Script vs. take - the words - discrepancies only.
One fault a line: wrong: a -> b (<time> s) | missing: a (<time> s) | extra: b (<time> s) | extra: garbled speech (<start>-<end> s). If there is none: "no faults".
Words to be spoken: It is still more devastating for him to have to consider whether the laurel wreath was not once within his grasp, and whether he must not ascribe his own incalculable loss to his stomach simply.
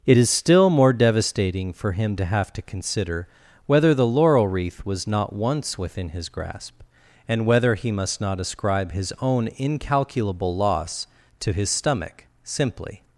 no faults